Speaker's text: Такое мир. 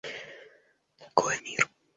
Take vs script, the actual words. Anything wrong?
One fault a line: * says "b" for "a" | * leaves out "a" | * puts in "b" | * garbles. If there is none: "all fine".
all fine